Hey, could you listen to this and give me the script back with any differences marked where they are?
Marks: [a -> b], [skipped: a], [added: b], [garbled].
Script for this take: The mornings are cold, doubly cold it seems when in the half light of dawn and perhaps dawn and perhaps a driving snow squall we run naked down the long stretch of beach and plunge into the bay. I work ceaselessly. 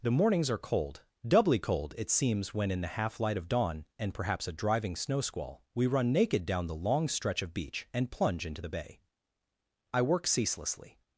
The mornings are cold, doubly cold it seems when in the half light of dawn and perhaps [skipped: dawn and perhaps] a driving snow squall we run naked down the long stretch of beach and plunge into the bay. I work ceaselessly.